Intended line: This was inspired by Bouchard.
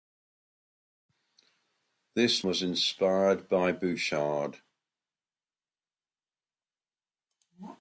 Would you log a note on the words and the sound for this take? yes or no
no